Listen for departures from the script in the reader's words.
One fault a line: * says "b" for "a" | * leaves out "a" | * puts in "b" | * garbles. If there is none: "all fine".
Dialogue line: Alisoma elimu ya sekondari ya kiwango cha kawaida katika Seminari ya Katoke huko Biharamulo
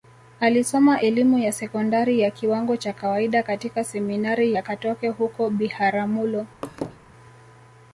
all fine